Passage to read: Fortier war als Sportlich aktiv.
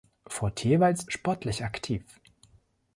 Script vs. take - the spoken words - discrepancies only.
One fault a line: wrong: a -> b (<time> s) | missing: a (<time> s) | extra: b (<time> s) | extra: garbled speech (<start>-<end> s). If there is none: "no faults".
no faults